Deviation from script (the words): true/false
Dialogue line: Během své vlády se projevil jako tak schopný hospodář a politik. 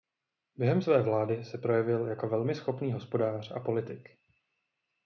true